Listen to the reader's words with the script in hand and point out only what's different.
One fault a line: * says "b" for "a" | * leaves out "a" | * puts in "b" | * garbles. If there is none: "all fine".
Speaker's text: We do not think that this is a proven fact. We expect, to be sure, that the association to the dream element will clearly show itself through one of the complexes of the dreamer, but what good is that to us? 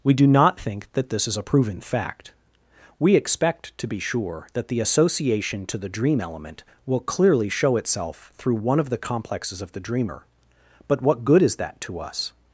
all fine